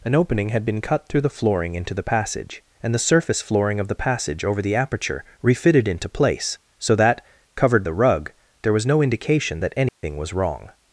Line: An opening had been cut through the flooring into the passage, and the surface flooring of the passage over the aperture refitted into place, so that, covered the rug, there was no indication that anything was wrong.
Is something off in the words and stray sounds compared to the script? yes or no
yes